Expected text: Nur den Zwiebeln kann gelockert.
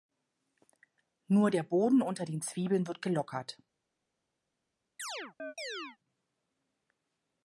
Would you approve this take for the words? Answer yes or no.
no